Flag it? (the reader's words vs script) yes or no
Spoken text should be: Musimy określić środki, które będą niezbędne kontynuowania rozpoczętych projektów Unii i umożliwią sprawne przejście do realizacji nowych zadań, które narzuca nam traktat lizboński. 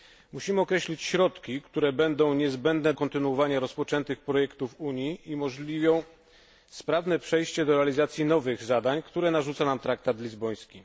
no